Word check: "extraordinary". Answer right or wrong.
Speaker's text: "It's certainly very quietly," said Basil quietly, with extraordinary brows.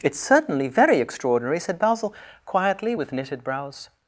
wrong